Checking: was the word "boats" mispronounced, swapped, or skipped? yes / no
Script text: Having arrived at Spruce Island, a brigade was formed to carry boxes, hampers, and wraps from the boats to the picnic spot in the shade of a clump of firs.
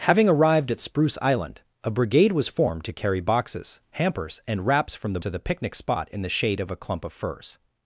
yes